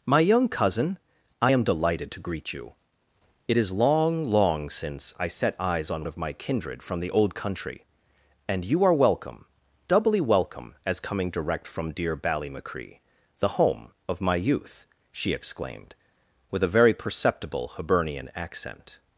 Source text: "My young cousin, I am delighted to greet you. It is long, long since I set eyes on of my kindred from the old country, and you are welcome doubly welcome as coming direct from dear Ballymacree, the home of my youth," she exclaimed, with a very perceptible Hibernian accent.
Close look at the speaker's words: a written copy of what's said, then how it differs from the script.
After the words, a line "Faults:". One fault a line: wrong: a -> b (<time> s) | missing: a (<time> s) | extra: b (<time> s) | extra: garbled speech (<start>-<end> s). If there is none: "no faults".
"My young cousin, I am delighted to greet you. It is long, long since I set eyes on of my kindred from the old country, and you are welcome doubly welcome as coming direct from dear Ballymacree, the home of my youth," she exclaimed, with a very perceptible Hibernian accent.
Faults:
no faults